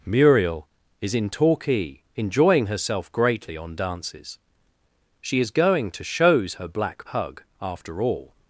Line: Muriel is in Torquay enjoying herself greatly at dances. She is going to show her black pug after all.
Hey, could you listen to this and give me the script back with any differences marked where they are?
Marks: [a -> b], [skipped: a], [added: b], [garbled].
Muriel is in Torquay enjoying herself greatly [at -> on] dances. She is going to [show -> shows] her black pug after all.